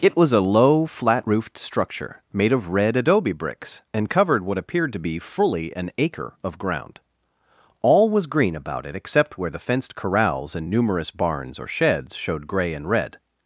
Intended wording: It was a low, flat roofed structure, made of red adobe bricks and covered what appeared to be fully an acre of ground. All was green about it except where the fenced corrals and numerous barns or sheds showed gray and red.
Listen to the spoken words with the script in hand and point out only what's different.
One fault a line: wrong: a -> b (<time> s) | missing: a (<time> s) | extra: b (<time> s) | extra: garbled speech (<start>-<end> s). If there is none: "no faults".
no faults